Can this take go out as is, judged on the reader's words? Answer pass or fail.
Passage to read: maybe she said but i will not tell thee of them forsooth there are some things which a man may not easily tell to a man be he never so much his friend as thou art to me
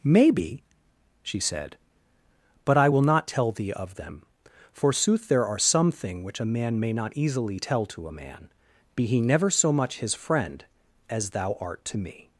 fail